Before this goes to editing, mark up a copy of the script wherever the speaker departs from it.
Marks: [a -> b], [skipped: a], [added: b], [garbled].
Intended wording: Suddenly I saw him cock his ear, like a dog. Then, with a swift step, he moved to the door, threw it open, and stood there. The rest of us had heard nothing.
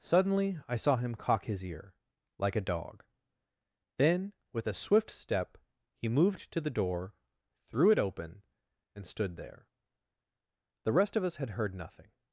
Suddenly I saw him cock his ear, like a dog. Then, with a swift step, he moved to the door, threw it open, and stood there. The rest of us had heard nothing.